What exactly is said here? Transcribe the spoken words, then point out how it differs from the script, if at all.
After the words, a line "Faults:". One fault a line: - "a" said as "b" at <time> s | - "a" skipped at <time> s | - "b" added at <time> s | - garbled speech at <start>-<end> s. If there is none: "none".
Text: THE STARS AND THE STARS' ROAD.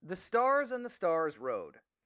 THE STARS AND THE STARS' ROAD.
Faults:
none